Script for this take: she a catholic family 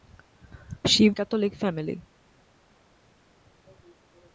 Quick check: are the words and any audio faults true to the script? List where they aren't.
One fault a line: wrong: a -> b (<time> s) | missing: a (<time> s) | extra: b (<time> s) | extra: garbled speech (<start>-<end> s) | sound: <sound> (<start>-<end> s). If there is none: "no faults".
no faults